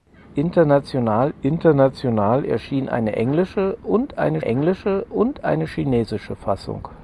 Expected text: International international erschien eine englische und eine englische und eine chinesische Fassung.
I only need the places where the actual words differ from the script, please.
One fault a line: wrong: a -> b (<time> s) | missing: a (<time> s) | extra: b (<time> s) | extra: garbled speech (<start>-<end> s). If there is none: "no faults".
no faults